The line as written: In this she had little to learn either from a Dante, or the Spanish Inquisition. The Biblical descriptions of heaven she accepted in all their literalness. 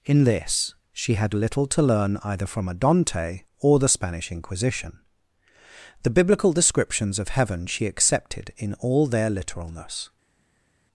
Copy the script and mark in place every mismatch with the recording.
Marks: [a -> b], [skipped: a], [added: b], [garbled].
In this she had little to learn either from a Dante, or the Spanish Inquisition. The Biblical descriptions of heaven she accepted in all their literalness.